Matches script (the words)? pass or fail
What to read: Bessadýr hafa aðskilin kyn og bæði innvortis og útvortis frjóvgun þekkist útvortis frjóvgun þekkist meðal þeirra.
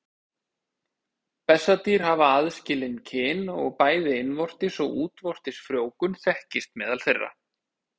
fail